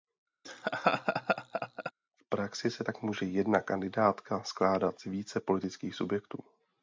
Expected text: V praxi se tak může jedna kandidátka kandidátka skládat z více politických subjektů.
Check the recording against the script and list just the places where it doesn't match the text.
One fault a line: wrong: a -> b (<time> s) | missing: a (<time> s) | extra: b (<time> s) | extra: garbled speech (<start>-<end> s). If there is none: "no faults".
missing: kandidátka (4.4 s)